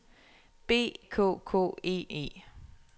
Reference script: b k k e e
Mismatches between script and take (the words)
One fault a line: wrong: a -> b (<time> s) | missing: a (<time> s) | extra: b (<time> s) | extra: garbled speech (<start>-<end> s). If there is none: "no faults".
no faults